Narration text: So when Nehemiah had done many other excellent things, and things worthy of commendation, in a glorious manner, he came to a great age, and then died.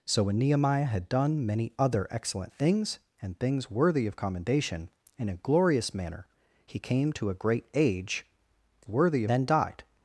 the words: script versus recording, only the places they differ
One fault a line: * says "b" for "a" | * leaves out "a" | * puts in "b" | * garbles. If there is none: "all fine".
* says "worthy" for "and"